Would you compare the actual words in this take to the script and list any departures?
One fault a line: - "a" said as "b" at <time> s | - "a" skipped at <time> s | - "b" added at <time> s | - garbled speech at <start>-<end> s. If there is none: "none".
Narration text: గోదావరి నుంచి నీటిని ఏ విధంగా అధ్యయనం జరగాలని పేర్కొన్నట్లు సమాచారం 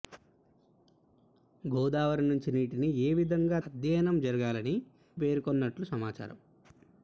none